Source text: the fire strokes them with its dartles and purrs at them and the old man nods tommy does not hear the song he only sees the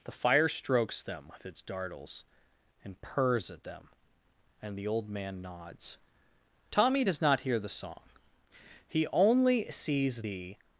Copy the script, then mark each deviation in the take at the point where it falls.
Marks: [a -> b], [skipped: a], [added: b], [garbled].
the fire strokes them with its dartles and purrs at them and the old man nods tommy does not hear the song he only sees the